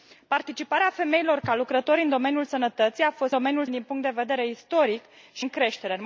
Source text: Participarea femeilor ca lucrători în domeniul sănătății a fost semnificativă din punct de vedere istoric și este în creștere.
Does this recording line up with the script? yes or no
no